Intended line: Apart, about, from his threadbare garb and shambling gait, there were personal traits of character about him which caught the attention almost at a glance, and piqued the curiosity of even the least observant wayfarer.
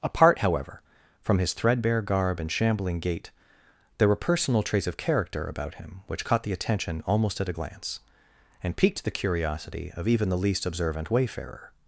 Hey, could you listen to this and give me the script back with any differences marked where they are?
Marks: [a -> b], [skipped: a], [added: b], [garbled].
Apart, [about, -> however] from his threadbare garb and shambling gait, there were personal traits of character about him which caught the attention almost at a glance, and piqued the curiosity of even the least observant wayfarer.